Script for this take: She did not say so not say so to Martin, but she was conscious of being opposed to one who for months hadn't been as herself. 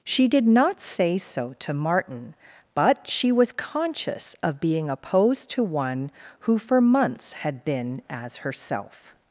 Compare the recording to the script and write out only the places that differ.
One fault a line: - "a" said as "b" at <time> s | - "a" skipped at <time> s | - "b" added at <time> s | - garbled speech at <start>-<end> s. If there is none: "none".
- "not say so" skipped at 1.6 s
- "hadn't" said as "had" at 7.3 s